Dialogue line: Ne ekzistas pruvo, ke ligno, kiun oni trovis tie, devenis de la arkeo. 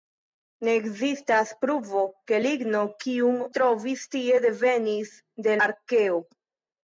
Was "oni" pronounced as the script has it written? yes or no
no